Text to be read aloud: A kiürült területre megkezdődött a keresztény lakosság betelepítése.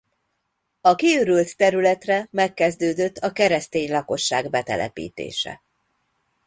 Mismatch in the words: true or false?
false